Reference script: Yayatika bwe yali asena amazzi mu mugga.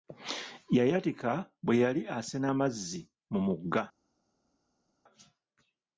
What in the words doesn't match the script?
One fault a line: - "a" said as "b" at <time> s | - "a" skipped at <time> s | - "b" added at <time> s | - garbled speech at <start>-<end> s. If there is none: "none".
none